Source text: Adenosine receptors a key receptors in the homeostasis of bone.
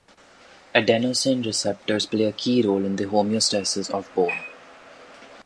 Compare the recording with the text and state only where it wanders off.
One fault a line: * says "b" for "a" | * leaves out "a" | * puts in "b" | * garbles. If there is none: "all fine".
* puts in "play"
* says "role" for "receptors"